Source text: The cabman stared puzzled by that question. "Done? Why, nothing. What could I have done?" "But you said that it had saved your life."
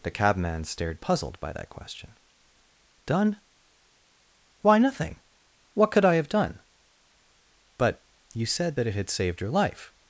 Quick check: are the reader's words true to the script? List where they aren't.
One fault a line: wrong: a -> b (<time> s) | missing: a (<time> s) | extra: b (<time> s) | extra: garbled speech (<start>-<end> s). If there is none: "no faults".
no faults